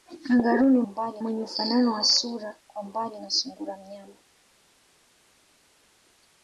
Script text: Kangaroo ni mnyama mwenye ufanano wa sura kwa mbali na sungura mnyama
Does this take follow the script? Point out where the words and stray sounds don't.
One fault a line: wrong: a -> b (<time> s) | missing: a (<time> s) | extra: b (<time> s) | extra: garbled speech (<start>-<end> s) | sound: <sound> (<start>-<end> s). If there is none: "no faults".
wrong: mnyama -> mbali (0.9 s)